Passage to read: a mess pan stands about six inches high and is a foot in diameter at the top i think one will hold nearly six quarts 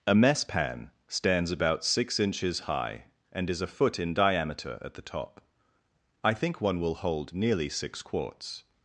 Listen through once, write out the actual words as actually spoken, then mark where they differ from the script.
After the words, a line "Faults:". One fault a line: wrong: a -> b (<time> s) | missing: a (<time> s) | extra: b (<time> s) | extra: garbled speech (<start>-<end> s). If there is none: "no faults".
a mess pan stands about six inches high and is a foot in diameter at the top i think one will hold nearly six quarts
Faults:
no faults